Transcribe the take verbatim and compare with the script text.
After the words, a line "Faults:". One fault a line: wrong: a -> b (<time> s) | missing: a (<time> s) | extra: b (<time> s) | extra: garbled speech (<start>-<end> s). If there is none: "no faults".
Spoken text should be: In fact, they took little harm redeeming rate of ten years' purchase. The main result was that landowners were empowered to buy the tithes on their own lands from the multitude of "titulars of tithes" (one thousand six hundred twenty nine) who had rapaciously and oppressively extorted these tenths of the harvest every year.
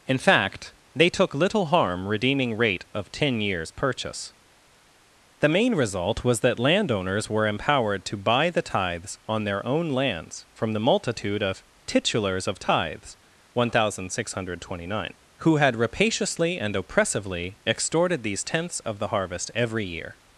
In fact, they took little harm redeeming rate of ten years' purchase. The main result was that landowners were empowered to buy the tithes on their own lands from the multitude of "titulars of tithes" (one thousand six hundred twenty nine) who had rapaciously and oppressively extorted these tenths of the harvest every year.
Faults:
no faults